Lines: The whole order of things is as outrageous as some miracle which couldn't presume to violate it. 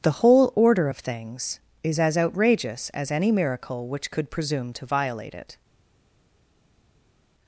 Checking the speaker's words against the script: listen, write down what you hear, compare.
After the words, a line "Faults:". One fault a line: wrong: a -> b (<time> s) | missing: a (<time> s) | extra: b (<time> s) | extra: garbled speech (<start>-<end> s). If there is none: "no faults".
The whole order of things is as outrageous as any miracle which could presume to violate it.
Faults:
wrong: some -> any (3.1 s)
wrong: couldn't -> could (4.1 s)